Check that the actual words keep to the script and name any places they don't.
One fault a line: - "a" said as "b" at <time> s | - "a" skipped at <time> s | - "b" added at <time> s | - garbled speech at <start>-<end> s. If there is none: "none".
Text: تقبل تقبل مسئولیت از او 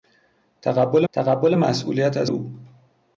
none